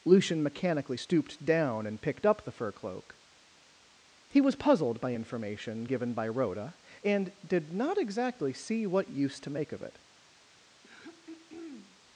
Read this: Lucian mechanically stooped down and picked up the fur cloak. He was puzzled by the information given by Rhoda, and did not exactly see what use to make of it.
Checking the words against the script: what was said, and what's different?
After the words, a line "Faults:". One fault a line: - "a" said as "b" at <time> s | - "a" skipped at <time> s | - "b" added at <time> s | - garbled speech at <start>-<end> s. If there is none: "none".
Lucian mechanically stooped down and picked up the fur cloak. He was puzzled by information given by Rhoda, and did not exactly see what use to make of it.
Faults:
- "the" skipped at 5.1 s